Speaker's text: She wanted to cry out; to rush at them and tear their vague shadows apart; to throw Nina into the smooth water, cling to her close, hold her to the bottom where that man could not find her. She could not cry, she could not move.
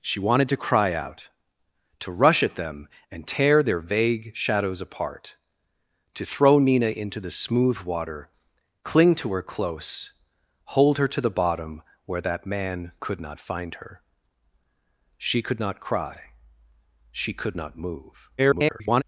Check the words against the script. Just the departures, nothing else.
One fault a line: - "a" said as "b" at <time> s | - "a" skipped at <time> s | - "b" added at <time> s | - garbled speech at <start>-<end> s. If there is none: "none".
- garbled speech at 18.4-19.0 s